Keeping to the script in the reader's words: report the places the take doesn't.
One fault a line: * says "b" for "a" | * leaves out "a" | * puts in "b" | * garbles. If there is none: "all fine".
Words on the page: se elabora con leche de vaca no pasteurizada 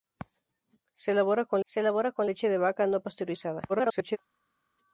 * puts in "se elabora con"
* garbles